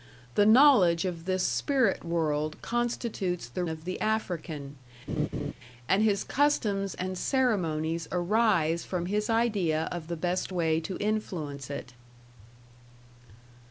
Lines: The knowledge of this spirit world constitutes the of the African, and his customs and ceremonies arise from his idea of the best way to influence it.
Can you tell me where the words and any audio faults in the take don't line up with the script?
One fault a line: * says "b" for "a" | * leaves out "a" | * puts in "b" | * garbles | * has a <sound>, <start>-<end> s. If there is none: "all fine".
* has a laugh, 5.1-5.5 s